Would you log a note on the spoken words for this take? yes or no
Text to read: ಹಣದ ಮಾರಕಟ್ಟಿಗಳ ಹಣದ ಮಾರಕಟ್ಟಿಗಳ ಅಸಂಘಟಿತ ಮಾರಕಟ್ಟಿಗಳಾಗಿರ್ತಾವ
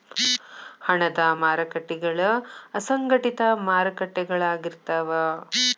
yes